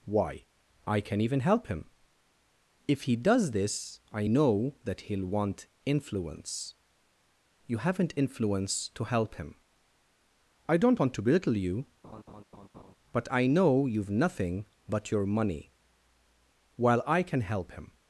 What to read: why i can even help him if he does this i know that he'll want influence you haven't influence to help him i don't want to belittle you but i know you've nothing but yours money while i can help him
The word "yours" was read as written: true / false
false